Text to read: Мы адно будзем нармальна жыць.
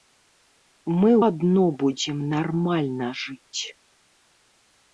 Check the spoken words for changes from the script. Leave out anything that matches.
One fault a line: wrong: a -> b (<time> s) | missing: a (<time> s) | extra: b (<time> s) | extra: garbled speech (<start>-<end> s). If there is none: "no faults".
no faults